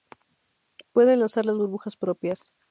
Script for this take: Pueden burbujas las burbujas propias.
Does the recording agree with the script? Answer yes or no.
no